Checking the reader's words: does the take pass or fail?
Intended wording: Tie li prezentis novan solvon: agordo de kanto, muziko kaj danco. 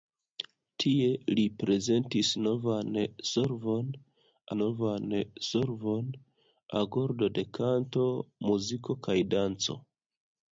fail